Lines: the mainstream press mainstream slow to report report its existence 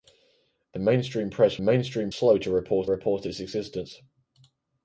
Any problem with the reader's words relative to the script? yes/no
no